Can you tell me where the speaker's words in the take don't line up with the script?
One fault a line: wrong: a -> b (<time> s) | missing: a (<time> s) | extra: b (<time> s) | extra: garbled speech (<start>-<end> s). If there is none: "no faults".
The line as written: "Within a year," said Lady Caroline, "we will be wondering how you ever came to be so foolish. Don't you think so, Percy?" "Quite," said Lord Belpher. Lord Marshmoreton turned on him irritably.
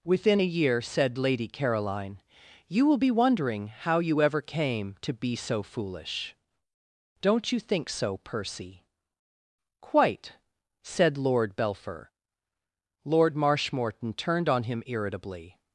wrong: we -> you (2.7 s)